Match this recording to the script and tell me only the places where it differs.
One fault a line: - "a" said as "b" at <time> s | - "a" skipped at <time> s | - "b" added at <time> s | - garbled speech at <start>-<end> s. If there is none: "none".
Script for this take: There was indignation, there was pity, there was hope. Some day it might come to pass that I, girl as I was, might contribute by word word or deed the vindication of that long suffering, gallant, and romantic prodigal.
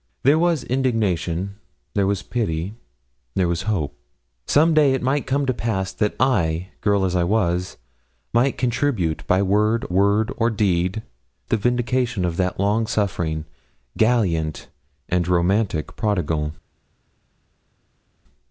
none